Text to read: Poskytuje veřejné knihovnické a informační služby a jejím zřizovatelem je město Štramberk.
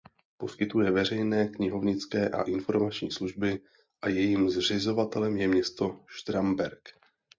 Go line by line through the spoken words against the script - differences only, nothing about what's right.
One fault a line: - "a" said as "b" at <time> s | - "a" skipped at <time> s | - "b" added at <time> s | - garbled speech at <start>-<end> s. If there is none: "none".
none